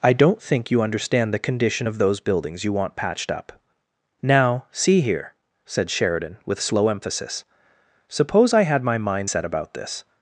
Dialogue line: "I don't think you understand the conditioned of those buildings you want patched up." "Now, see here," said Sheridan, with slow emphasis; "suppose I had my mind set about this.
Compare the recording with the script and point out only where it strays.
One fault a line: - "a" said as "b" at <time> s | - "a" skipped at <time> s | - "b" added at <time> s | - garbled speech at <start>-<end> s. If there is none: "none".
- "conditioned" said as "condition" at 1.4 s